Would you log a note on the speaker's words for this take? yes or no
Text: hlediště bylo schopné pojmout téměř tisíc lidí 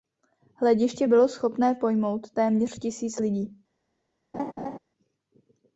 no